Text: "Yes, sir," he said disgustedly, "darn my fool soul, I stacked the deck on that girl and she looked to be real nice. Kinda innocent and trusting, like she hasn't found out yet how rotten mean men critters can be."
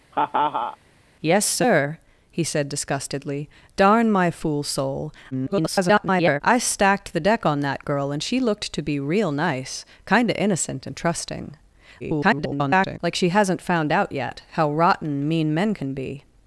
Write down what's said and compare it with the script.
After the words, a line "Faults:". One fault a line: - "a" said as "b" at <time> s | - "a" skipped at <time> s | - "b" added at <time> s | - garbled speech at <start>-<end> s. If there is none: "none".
"Yes, sir," he said disgustedly, "darn my fool soul, [garbled] I stacked the deck on that girl and she looked to be real nice. Kinda innocent and trusting, [garbled] like she hasn't found out yet how rotten mean men can be."
Faults:
- garbled speech at 5.3-6.4 s
- garbled speech at 12.0-13.0 s
- "critters" skipped at 15.7 s